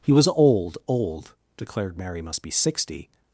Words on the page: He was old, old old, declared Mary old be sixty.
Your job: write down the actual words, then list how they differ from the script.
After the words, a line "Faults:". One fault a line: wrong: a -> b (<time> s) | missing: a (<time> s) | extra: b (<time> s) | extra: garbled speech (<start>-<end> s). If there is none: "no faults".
He was old, old, declared Mary must be sixty.
Faults:
missing: old (1.3 s)
wrong: old -> must (2.2 s)